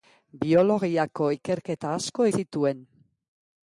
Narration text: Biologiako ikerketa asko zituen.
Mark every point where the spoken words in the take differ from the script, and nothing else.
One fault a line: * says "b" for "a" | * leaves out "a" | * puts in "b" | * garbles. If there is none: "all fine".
all fine